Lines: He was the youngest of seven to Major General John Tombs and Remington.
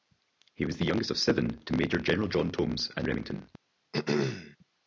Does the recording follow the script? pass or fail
pass